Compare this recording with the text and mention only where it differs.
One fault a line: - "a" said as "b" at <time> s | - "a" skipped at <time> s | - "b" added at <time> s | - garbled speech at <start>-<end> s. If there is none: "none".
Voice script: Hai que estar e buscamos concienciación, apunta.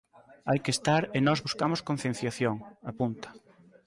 - "nós" added at 1.3 s